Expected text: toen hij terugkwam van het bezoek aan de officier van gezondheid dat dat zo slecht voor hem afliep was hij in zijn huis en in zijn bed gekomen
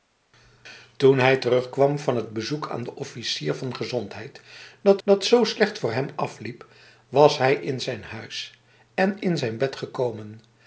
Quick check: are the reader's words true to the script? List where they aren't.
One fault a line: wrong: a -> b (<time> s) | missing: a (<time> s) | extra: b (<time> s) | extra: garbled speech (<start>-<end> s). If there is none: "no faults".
no faults